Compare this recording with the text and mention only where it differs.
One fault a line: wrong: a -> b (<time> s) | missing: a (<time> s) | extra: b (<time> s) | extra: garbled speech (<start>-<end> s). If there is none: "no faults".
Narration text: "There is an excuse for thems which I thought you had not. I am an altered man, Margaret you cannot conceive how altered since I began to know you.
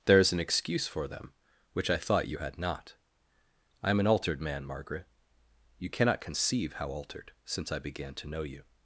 wrong: thems -> them (1.1 s)